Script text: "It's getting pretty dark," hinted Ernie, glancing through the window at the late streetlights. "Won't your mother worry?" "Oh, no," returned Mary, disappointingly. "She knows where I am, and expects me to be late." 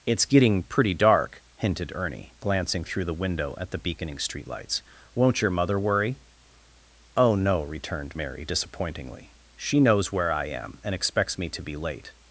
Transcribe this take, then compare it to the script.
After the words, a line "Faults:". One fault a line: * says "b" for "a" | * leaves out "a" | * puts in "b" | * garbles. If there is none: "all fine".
"It's getting pretty dark," hinted Ernie, glancing through the window at the beaconing streetlights. "Won't your mother worry?" "Oh, no," returned Mary, disappointingly. "She knows where I am, and expects me to be late."
Faults:
* says "beaconing" for "late"